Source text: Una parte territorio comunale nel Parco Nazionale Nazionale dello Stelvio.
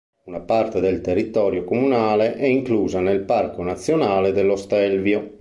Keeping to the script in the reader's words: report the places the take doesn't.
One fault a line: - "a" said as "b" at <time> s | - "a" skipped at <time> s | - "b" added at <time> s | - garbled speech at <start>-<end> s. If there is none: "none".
- "del" added at 0.8 s
- "è inclusa" added at 2.4 s
- "Nazionale" skipped at 4.3 s